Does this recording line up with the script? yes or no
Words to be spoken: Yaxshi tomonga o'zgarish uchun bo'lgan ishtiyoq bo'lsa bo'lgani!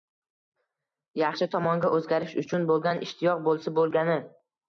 yes